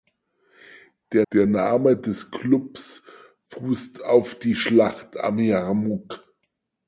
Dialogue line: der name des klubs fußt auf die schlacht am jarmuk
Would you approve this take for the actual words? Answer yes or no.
no